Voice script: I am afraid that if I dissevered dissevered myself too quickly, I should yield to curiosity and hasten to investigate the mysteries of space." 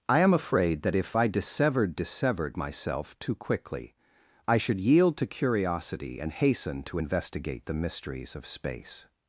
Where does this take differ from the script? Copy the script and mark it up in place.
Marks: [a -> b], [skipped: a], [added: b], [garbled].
I am afraid that if I dissevered dissevered myself too quickly, I should yield to curiosity and hasten to investigate the mysteries of space."